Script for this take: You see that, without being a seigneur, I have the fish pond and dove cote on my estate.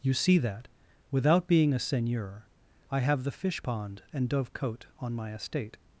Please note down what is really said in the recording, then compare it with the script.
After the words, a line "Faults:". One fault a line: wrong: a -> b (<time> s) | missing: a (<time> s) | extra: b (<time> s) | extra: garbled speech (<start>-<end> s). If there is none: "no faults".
You see that, without being a seigneur, I have the fish pond and dove cote on my estate.
Faults:
no faults